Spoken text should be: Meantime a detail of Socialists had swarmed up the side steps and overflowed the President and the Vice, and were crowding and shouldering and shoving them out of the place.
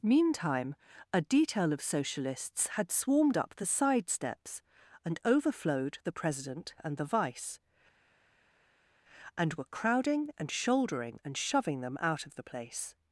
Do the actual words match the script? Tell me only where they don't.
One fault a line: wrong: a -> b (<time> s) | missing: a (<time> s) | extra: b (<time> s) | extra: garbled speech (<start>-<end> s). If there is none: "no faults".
no faults